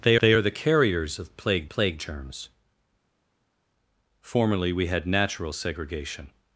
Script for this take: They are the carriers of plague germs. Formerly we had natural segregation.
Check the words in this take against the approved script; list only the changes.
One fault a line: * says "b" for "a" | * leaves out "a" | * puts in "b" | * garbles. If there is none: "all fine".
* puts in "they"
* puts in "plague"